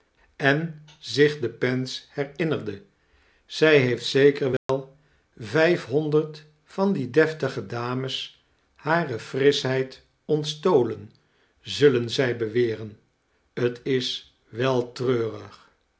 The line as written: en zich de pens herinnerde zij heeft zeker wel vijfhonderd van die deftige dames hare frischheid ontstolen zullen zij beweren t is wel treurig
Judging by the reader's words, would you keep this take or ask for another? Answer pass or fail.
pass